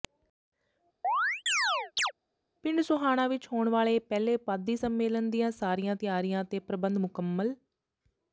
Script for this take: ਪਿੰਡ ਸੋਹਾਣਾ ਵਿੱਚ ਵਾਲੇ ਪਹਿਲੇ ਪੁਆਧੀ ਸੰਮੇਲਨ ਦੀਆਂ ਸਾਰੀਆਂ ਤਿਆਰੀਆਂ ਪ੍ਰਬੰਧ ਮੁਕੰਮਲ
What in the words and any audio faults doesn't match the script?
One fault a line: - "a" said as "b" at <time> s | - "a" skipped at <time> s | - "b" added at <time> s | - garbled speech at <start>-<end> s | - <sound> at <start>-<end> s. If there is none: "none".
- chirp at 1.0-2.1 s
- "ਹੋਣ" added at 3.5 s
- "ਤੇ" added at 6.5 s